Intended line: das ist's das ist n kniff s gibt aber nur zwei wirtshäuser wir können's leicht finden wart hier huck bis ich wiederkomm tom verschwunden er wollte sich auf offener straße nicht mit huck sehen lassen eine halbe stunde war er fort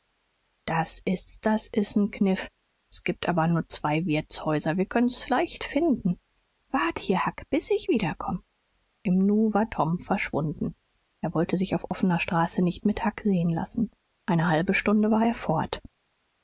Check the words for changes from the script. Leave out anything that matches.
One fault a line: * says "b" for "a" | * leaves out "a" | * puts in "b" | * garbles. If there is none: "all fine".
* puts in "im nu war"